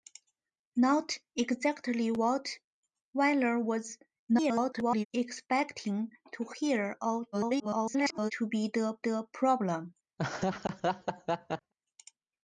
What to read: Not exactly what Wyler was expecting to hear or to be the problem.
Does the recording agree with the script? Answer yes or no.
no